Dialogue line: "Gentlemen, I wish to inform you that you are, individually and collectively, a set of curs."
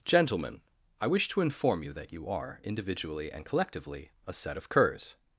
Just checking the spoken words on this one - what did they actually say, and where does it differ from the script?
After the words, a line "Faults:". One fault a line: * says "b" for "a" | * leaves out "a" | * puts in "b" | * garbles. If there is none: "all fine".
"Gentlemen, I wish to inform you that you are, individually and collectively, a set of curs."
Faults:
all fine